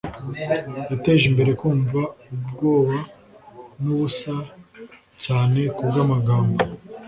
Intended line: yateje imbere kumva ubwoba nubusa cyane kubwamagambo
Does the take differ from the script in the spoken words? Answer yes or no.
no